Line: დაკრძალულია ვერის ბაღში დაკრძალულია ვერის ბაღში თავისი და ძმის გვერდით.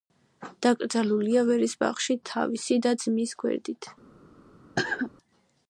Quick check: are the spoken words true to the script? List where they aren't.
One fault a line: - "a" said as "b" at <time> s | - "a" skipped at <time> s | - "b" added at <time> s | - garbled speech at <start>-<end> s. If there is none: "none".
- "დაკრძალულია ვერის ბაღში" skipped at 2.2 s